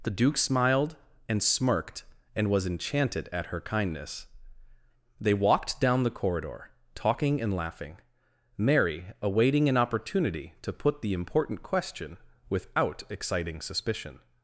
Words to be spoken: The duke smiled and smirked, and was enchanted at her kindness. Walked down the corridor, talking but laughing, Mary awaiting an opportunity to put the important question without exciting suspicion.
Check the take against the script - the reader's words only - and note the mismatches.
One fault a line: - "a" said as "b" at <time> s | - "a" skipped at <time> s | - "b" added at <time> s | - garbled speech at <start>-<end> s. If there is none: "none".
- "They" added at 5.2 s
- "but" said as "and" at 7.4 s